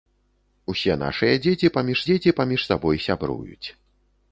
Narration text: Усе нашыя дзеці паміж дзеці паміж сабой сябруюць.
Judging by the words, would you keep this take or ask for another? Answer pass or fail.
pass